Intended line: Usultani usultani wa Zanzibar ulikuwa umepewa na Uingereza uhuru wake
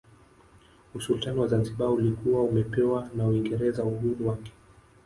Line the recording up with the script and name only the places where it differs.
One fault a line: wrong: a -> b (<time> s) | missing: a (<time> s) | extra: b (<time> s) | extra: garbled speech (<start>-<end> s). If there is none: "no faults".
missing: usultani (1.4 s)